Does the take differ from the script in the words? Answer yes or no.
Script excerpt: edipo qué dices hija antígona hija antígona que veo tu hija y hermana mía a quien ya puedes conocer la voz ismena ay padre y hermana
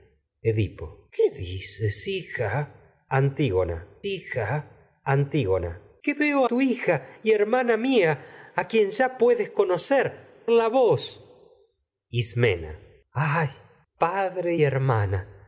no